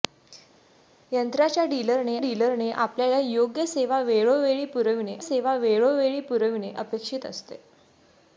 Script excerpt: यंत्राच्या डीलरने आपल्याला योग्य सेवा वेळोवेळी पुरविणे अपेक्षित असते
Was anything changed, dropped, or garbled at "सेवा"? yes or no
no